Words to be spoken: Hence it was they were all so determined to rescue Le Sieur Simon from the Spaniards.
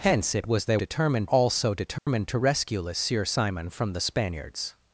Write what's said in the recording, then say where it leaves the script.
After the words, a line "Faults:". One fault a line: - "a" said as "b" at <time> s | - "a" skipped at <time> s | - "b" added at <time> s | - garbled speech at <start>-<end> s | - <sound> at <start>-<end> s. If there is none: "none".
Hence it was they determined all so determined to rescue Le Sieur Simon from the Spaniards.
Faults:
- "were" said as "determined" at 0.8 s
- dropout at 2.0-2.1 s